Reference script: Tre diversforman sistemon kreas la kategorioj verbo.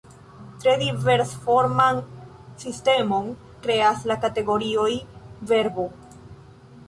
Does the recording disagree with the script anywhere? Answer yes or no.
no